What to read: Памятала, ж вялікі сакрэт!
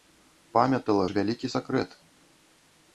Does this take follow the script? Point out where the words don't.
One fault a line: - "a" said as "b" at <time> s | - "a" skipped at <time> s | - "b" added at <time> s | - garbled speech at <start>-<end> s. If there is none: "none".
none